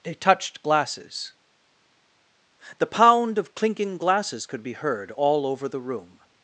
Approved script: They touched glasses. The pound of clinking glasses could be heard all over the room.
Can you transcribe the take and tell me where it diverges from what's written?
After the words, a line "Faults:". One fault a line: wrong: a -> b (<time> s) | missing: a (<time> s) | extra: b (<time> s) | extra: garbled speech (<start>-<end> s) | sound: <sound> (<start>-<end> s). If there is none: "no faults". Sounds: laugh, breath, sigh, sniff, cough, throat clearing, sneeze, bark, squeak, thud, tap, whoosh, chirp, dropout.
They touched glasses. The pound of clinking glasses could be heard all over the room.
Faults:
no faults